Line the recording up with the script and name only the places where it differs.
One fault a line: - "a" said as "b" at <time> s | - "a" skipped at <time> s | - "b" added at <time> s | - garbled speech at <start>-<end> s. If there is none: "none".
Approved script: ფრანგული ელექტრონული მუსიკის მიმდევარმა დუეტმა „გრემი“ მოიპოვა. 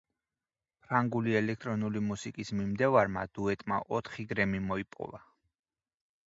- "ოთხი" added at 4.0 s